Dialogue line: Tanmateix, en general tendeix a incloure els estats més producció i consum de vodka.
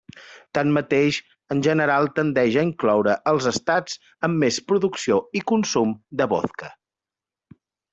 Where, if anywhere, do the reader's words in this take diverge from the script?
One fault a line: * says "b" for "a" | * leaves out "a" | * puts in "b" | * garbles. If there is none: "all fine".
* puts in "amb"